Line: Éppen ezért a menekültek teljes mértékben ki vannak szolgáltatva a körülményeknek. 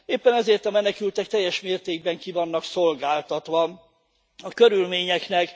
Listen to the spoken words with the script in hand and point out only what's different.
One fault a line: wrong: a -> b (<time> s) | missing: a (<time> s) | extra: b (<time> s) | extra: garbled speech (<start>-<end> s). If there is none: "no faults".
no faults